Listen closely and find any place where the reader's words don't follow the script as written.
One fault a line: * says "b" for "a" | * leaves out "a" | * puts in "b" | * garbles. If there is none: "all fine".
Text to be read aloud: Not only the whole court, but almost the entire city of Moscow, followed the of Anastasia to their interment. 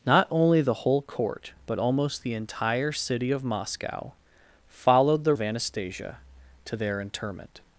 all fine